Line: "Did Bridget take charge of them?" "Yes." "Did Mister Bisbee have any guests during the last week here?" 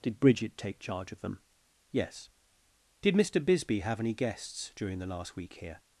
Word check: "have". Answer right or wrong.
right